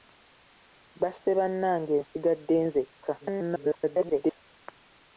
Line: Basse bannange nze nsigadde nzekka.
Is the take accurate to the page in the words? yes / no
no